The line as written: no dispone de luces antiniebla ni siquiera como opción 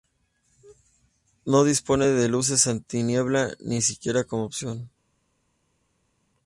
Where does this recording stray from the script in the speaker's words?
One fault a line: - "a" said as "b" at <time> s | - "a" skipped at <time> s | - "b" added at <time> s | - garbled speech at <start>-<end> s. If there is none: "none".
none